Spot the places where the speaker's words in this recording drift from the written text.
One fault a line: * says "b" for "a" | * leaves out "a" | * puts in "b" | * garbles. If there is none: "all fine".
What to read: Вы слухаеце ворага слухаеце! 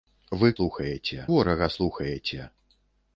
all fine